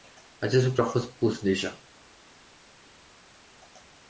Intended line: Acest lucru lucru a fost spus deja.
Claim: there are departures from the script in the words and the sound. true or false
true